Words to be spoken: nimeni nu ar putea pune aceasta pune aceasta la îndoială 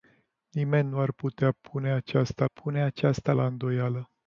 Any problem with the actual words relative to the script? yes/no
no